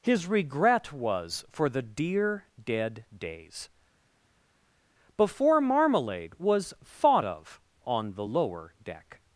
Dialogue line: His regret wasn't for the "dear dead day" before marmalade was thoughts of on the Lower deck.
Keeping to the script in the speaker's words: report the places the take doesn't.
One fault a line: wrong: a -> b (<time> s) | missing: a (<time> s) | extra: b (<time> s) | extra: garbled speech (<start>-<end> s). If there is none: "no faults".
wrong: wasn't -> was (0.9 s)
wrong: day -> days (3.1 s)
wrong: thoughts -> thought (6.8 s)